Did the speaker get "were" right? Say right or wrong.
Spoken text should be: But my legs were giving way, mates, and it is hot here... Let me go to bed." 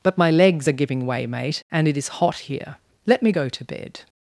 wrong